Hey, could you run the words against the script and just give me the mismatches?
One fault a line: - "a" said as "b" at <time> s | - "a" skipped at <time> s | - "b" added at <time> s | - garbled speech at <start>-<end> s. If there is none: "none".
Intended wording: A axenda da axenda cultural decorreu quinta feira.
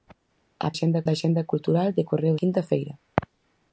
none